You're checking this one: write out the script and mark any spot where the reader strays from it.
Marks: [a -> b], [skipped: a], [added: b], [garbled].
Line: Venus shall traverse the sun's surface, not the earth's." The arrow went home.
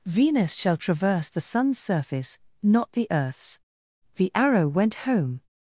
Venus shall traverse the sun's surface, not the earth's." The arrow went home.